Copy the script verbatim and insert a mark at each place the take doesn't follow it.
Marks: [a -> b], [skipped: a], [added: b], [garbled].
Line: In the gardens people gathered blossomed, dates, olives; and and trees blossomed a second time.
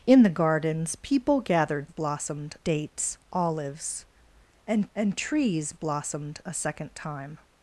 In the gardens people gathered blossomed, dates, olives; and and trees blossomed a second time.